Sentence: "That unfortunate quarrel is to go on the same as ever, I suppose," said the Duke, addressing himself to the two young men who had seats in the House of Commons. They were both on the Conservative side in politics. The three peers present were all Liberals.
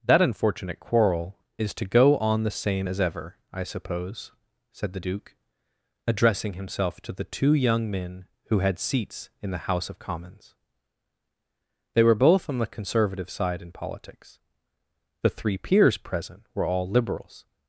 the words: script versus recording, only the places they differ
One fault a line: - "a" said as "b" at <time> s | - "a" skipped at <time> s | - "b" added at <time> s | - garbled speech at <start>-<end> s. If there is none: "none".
none